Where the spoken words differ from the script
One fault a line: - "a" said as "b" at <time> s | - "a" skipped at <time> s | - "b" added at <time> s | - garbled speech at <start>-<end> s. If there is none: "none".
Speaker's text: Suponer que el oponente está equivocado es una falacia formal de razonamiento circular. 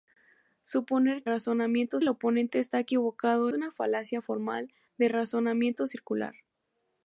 - "que" said as "razonamiento" at 1.2 s
- "es" skipped at 3.5 s